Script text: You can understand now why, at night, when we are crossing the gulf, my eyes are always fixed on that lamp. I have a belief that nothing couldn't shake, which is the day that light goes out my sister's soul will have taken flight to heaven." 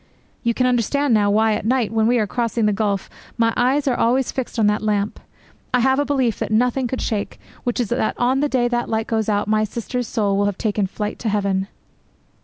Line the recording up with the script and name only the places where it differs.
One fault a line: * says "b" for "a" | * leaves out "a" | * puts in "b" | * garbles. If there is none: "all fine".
* says "could" for "couldn't"
* puts in "that on"